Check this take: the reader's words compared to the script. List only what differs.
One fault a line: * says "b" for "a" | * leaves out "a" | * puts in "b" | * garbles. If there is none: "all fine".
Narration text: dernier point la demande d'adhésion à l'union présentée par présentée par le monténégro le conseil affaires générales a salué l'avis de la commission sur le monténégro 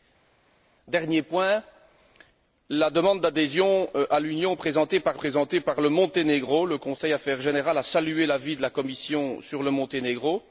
all fine